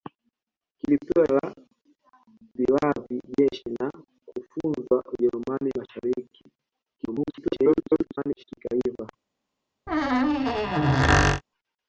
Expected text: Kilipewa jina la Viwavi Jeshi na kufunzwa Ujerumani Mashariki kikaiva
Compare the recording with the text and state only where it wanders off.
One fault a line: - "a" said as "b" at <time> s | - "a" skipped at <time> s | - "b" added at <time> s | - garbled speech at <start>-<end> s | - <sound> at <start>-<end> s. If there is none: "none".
- "jina" skipped at 1.3 s
- garbled speech at 7.0-8.4 s
- squeak at 9.9-11.4 s